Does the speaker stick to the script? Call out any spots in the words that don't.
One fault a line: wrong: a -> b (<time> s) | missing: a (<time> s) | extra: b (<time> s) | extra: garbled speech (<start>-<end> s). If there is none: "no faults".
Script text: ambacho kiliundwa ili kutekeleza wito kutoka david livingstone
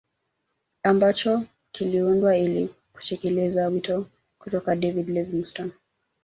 no faults